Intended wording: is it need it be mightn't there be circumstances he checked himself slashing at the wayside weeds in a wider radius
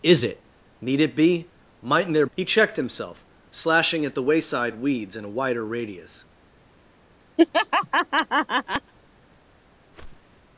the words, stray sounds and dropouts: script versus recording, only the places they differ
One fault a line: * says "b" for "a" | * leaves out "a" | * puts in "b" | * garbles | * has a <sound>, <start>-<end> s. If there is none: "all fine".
* leaves out "be circumstances"
* has a laugh, 7.4-8.9 s
* has a whoosh, 9.9-10.4 s